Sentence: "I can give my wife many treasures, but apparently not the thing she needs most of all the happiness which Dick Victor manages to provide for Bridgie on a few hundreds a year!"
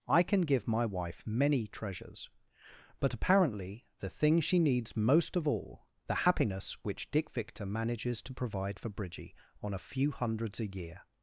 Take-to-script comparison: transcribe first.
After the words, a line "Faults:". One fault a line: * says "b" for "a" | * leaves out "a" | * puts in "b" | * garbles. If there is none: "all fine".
"I can give my wife many treasures, but apparently the thing she needs most of all the happiness which Dick Victor manages to provide for Bridgie on a few hundreds a year!"
Faults:
* leaves out "not"